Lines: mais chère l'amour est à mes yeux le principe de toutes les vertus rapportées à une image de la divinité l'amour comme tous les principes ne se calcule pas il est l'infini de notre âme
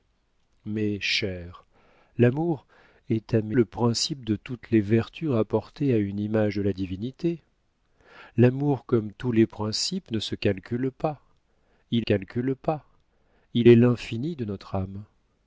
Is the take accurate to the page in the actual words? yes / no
no